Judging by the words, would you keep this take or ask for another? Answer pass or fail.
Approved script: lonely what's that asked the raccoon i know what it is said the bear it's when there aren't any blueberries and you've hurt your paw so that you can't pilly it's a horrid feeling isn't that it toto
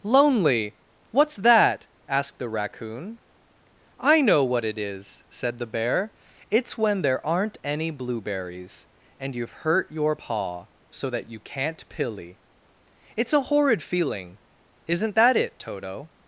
pass